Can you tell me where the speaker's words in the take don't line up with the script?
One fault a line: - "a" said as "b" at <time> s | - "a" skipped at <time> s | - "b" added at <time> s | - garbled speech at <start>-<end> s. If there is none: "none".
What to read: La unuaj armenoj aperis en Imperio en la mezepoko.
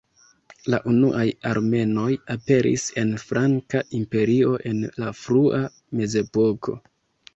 - "Franka" added at 3.2 s
- "frua" added at 5.2 s